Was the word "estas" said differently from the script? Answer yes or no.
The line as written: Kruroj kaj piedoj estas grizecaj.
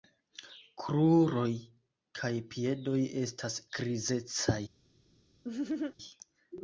no